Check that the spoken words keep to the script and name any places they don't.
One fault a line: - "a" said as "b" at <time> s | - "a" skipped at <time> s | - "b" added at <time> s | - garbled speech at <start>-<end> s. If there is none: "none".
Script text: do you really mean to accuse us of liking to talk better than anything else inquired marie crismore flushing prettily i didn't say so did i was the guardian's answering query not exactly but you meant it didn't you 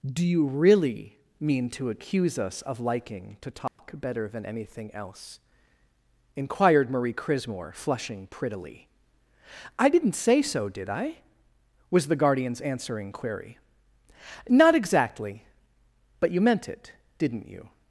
none